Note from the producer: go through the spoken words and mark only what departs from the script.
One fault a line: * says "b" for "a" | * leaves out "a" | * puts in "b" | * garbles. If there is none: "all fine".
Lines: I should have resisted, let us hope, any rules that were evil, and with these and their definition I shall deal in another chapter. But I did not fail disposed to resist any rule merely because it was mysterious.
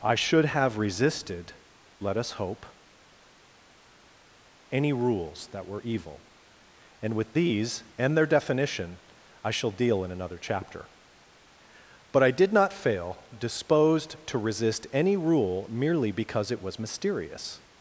all fine